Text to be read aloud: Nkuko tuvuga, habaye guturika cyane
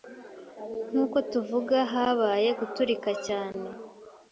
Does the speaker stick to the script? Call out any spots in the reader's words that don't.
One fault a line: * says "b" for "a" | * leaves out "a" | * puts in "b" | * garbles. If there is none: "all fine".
all fine